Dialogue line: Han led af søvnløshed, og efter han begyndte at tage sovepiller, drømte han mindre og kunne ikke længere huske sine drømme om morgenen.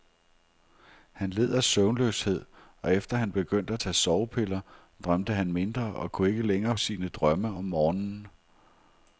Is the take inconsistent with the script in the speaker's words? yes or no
yes